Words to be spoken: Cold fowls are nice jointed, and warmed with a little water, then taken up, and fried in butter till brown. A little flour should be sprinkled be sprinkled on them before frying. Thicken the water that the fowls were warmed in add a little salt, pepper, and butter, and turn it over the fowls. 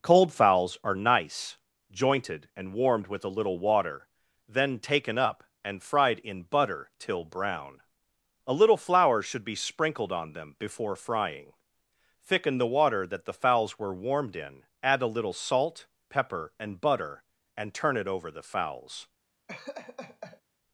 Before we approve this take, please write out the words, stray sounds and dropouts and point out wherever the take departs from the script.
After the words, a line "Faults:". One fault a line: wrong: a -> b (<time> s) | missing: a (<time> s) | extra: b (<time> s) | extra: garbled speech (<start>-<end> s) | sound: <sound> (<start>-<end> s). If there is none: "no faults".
Cold fowls are nice jointed, and warmed with a little water, then taken up, and fried in butter till brown. A little flour should be sprinkled on them before frying. Thicken the water that the fowls were warmed in add a little salt, pepper, and butter, and turn it over the fowls.
Faults:
missing: be sprinkled (10.1 s)
sound: laugh (19.5-20.4 s)